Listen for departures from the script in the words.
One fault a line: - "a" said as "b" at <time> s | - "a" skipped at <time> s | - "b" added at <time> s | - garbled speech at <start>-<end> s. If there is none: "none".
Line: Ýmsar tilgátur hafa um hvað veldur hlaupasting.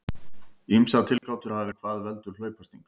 none